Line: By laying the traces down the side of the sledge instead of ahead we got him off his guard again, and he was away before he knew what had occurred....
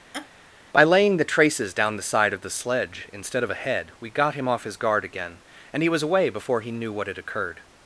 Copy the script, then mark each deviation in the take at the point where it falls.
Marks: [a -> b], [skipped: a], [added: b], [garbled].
By laying the traces down the side of the sledge instead of ahead we got him off his guard again, and he was away before he knew what had occurred....